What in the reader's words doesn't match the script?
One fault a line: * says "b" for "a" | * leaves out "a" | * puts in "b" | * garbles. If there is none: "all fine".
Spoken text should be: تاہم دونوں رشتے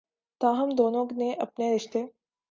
* puts in "نے اپنے"